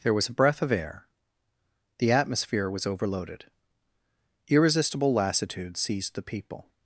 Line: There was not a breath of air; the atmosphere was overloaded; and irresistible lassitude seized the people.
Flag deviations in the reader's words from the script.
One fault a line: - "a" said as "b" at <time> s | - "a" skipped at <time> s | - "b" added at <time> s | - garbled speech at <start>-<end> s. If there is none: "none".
- "not" skipped at 0.3 s
- "and" skipped at 3.5 s